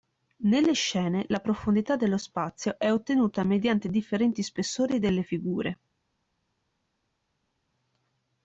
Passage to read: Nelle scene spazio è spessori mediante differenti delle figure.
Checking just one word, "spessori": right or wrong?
wrong